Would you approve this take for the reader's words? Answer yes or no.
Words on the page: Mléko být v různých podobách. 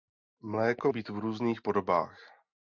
yes